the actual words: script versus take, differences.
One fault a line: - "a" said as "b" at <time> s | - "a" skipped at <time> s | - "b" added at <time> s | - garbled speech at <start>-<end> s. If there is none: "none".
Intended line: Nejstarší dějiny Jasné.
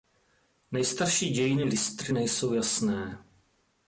- "Lystry nejsou" added at 1.6 s